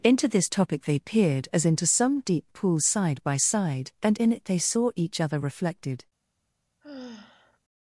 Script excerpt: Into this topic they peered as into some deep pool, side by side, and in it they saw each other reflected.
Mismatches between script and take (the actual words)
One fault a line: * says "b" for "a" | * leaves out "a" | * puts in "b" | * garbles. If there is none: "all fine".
all fine